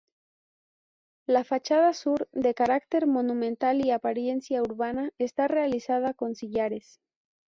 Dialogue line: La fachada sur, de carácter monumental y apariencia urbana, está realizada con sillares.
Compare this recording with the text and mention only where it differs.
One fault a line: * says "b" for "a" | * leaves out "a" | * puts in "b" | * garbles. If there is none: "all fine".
all fine